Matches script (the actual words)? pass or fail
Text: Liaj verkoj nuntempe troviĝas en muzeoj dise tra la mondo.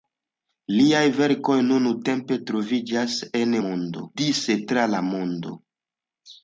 fail